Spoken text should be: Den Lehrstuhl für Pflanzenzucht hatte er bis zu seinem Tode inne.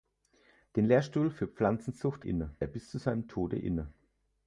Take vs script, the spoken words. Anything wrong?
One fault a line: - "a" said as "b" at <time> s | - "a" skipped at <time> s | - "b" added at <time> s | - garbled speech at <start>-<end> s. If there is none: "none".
- "hatte" said as "inne" at 2.2 s